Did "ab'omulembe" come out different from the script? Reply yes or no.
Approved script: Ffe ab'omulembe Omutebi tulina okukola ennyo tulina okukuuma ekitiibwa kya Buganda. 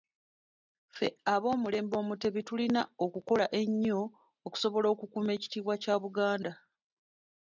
no